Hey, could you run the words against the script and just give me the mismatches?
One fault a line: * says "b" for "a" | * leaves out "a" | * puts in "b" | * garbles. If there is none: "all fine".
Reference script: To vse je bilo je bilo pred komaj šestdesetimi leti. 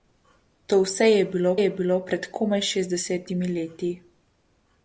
all fine